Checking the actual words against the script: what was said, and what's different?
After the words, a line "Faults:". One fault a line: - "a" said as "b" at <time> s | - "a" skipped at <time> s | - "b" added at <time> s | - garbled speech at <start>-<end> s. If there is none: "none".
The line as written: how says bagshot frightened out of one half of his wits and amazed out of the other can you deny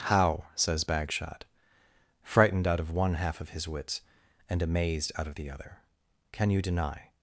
how says bagshot frightened out of one half of his wits and amazed out of the other can you deny
Faults:
none